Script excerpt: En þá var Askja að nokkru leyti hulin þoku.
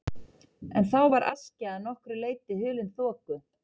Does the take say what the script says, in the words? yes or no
yes